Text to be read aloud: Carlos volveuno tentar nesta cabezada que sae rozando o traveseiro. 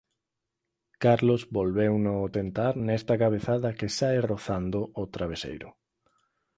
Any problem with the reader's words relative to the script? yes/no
no